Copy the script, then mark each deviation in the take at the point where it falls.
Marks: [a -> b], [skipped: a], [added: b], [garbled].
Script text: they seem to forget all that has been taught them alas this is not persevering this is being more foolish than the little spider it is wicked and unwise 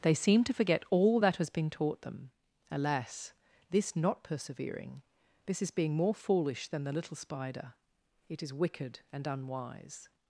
they seem to forget all that has been taught them alas this [skipped: is] not persevering this is being more foolish than the little spider it is wicked and unwise